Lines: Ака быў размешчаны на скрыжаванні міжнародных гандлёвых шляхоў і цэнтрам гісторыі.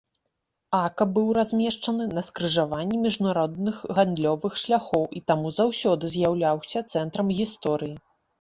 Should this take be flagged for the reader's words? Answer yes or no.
yes